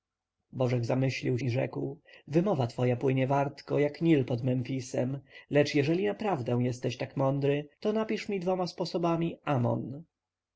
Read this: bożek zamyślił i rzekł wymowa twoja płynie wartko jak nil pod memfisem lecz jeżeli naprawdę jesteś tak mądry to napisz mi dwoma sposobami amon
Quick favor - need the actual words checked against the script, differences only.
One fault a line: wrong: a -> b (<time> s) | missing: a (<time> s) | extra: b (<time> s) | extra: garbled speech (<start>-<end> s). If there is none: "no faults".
no faults